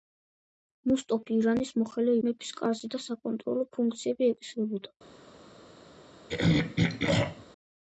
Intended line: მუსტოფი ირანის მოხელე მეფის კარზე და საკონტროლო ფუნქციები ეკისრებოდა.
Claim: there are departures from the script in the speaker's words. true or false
false